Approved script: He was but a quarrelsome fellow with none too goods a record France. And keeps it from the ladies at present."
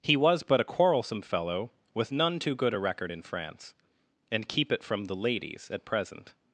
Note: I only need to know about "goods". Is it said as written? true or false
false